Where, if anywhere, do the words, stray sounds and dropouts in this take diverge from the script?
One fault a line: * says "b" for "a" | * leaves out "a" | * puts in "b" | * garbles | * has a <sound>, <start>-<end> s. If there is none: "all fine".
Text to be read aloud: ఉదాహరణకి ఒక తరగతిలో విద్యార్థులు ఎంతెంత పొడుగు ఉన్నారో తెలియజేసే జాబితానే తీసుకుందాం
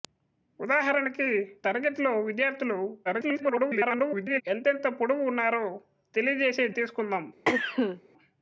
* leaves out "ఒక"
* garbles
* leaves out "జాబితానే"
* has a cough, 7.5-8.0 s